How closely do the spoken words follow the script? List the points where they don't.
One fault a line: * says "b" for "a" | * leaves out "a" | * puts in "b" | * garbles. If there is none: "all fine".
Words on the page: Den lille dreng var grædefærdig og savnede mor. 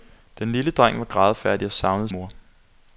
all fine